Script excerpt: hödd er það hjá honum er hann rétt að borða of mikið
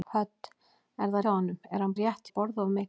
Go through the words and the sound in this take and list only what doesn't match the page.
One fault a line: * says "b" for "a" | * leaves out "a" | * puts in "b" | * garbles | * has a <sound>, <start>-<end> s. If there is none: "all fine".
all fine